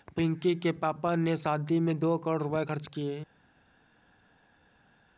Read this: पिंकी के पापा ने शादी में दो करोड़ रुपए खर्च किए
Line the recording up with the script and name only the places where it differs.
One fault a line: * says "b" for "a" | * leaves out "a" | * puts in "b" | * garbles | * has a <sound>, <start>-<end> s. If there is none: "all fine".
all fine